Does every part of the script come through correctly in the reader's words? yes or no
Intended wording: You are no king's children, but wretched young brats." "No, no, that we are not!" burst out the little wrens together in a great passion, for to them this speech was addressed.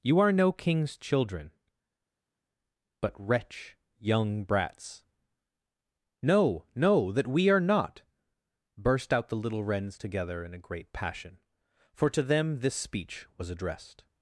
no